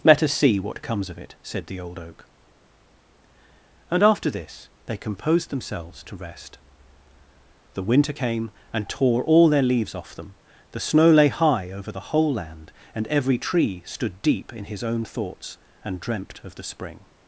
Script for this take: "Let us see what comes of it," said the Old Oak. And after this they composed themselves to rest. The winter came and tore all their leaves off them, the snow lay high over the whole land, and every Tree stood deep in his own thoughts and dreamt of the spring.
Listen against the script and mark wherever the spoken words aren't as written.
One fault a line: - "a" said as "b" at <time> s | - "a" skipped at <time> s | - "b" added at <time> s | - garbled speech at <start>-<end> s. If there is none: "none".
none